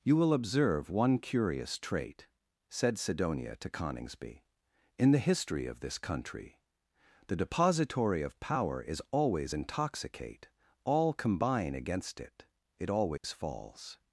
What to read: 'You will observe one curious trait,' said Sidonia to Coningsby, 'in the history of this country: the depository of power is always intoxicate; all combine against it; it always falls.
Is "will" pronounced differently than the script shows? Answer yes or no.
no